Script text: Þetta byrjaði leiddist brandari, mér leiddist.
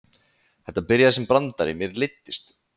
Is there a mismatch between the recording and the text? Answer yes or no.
yes